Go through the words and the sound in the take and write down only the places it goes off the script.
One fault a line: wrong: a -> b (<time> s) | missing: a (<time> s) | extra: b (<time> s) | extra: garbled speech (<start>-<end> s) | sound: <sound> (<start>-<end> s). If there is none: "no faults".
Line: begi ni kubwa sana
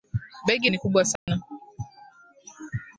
sound: dropout (1.2-1.3 s)